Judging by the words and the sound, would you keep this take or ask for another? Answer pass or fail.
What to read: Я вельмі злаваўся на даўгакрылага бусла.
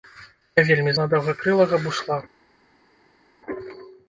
fail